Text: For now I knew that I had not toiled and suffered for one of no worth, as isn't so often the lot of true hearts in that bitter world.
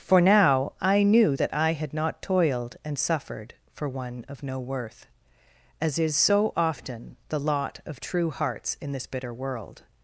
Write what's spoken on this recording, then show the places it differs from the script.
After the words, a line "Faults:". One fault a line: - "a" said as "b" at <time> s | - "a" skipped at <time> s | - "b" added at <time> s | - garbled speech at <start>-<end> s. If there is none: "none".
For now I knew that I had not toiled and suffered for one of no worth, as is so often the lot of true hearts in this bitter world.
Faults:
- "isn't" said as "is" at 6.0 s
- "that" said as "this" at 8.9 s